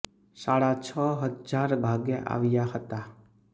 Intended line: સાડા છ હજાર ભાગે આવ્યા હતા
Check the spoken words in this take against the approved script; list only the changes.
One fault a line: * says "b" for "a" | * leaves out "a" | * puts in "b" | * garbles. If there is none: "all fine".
all fine